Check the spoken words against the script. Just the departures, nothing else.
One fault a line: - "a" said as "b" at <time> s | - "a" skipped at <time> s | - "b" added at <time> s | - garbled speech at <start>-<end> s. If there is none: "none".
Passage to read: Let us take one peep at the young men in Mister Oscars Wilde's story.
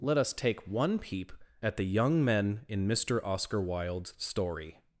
- "Oscars" said as "Oscar" at 3.2 s